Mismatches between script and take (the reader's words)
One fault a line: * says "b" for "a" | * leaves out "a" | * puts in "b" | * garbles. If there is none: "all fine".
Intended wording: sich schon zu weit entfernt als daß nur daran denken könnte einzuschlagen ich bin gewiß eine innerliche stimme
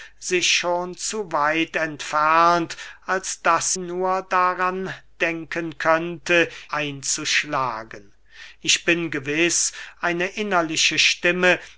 all fine